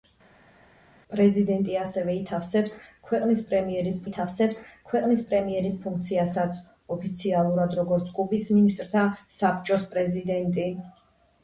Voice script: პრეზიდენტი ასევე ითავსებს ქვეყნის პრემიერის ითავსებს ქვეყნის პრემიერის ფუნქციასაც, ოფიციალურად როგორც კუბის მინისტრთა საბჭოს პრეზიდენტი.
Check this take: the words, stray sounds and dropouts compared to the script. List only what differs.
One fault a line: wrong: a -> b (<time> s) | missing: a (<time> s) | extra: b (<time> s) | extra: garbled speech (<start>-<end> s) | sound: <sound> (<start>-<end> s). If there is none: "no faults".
no faults